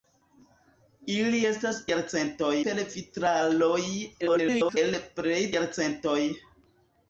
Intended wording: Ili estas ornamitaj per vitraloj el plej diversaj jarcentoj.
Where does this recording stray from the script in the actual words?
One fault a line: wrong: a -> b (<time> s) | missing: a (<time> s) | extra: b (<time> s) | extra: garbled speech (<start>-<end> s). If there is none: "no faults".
wrong: ornamitaj -> jarcentoj (1.9 s)
extra: garbled speech (4.2-4.8 s)
missing: diversaj (5.4 s)